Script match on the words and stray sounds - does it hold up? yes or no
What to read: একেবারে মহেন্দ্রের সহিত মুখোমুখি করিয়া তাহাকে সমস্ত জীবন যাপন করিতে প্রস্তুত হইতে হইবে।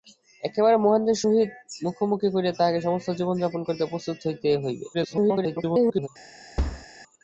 no